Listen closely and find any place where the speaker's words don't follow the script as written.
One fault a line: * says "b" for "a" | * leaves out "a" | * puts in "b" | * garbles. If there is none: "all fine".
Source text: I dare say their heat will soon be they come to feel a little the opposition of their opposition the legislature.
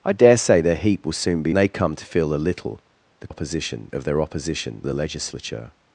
all fine